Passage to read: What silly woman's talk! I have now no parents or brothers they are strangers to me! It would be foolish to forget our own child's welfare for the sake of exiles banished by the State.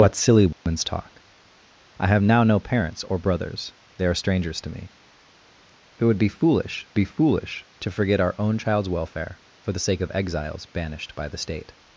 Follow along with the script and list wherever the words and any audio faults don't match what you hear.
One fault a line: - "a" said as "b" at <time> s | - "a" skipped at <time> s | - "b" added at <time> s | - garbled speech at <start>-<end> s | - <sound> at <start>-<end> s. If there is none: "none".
- dropout at 0.5-0.7 s
- "be foolish" added at 6.9 s